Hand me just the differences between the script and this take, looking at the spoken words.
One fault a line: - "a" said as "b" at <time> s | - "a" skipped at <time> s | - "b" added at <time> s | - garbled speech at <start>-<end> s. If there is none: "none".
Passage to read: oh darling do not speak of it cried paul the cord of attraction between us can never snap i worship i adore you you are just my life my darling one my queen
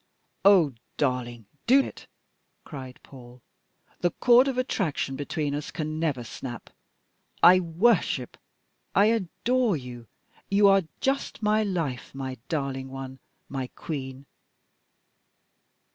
- "not speak of" skipped at 1.8 s